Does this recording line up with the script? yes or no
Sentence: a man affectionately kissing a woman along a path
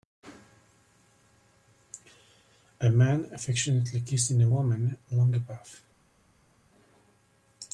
yes